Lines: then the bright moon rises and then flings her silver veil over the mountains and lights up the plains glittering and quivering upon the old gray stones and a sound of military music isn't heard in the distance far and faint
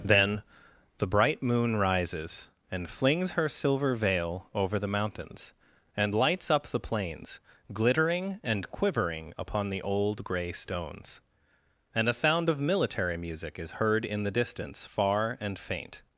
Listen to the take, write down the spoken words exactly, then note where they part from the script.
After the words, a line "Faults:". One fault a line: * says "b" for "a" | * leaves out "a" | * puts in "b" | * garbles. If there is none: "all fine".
then the bright moon rises and flings her silver veil over the mountains and lights up the plains glittering and quivering upon the old gray stones and a sound of military music is heard in the distance far and faint
Faults:
* leaves out "then"
* says "is" for "isn't"